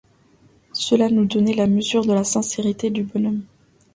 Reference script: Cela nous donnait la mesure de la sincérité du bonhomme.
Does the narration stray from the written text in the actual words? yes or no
no